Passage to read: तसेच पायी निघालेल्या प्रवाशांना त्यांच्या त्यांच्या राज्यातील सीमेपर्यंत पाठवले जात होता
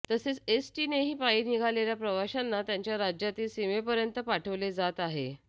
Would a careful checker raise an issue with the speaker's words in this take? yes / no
yes